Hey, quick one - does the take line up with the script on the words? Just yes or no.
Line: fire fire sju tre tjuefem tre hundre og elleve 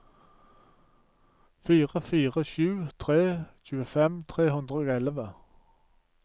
yes